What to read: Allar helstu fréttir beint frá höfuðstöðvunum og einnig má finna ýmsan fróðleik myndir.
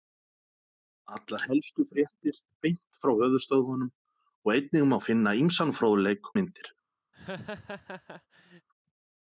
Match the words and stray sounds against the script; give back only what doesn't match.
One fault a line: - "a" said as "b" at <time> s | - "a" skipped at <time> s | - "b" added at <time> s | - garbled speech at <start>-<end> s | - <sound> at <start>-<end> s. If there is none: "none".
- laugh at 7.1-8.7 s